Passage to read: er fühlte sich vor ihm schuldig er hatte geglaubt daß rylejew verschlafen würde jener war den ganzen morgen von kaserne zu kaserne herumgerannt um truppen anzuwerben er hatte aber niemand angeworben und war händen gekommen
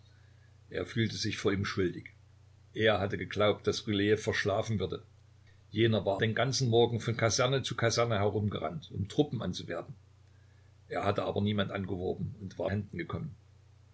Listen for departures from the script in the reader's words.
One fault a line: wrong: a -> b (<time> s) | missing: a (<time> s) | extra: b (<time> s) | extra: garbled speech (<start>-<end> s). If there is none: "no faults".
no faults